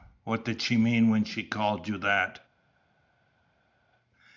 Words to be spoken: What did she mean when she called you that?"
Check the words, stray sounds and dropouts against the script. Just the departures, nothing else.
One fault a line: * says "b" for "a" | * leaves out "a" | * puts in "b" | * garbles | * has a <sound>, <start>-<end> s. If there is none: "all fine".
all fine